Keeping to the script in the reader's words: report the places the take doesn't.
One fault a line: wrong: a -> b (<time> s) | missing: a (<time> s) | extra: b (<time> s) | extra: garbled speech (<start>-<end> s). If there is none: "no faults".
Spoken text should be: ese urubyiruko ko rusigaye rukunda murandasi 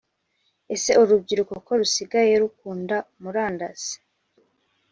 no faults